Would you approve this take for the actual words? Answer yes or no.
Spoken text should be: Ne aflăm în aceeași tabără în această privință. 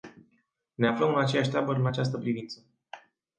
yes